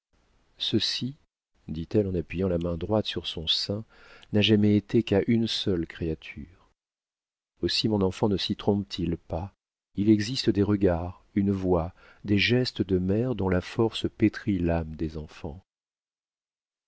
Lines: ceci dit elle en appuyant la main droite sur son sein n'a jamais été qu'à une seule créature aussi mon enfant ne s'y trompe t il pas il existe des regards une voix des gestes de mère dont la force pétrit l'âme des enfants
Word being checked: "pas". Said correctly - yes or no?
yes